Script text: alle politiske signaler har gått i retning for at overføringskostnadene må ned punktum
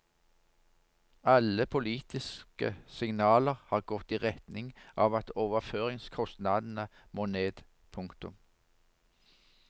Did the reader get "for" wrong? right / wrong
wrong